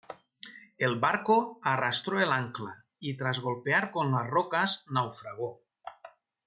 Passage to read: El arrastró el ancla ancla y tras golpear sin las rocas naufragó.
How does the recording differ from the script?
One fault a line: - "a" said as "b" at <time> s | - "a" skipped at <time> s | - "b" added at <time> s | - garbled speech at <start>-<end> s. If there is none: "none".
- "barco" added at 1.0 s
- "ancla" skipped at 2.9 s
- "sin" said as "con" at 3.9 s